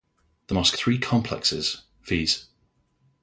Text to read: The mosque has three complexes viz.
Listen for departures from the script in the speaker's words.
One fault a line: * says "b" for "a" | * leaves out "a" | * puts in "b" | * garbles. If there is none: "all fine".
* leaves out "has"